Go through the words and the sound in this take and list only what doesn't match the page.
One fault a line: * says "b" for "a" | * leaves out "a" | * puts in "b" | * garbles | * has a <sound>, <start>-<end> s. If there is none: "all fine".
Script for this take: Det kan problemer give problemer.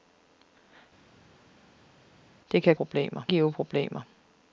all fine